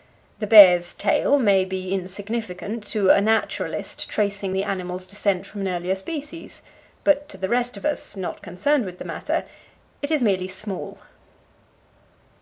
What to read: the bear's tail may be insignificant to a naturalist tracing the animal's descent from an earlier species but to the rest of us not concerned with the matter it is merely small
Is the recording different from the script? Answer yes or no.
no